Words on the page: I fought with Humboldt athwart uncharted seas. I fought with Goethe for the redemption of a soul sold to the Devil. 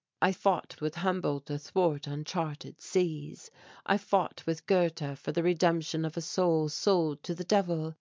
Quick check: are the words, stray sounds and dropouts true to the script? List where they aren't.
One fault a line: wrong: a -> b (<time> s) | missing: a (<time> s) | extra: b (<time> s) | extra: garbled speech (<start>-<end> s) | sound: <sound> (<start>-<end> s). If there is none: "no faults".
no faults